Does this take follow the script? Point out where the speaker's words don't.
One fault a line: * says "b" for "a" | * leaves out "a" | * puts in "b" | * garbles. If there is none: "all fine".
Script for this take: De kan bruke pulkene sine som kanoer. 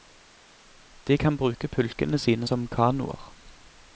all fine